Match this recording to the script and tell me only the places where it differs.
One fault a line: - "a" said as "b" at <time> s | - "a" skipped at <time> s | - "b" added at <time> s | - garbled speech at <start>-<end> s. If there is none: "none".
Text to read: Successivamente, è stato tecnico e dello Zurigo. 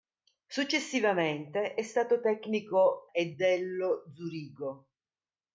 none